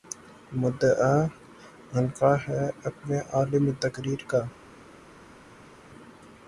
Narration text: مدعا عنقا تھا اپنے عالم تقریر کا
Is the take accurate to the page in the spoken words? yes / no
no